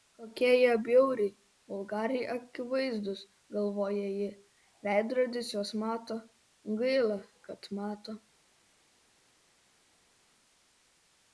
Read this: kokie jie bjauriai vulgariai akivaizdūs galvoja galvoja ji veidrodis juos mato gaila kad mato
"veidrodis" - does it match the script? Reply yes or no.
yes